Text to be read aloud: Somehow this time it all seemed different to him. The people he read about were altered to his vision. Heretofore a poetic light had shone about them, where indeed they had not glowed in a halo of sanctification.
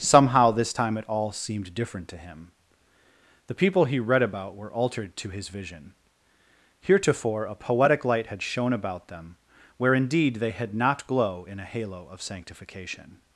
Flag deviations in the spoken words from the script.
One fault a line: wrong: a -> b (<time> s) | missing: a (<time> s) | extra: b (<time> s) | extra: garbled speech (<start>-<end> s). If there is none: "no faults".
wrong: glowed -> glow (11.1 s)